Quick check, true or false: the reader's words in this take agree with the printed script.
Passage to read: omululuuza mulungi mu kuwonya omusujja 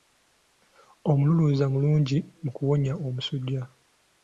true